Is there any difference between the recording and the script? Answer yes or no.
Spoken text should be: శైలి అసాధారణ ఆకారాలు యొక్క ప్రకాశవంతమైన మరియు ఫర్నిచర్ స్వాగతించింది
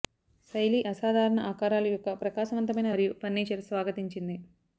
no